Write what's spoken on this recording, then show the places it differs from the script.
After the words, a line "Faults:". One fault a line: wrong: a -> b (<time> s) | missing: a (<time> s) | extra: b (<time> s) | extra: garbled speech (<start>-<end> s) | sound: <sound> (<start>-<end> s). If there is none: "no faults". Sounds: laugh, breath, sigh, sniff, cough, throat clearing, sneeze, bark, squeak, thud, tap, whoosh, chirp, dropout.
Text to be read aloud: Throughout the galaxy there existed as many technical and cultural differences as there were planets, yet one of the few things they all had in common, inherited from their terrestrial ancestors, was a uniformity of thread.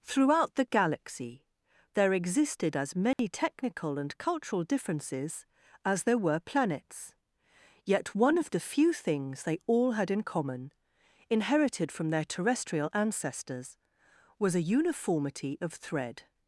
Throughout the galaxy there existed as many technical and cultural differences as there were planets, yet one of the few things they all had in common, inherited from their terrestrial ancestors, was a uniformity of thread.
Faults:
sound: dropout (3.1-3.2 s)